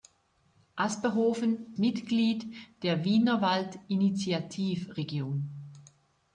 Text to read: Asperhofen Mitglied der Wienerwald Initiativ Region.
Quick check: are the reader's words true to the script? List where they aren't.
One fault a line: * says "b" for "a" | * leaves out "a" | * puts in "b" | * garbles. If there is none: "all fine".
all fine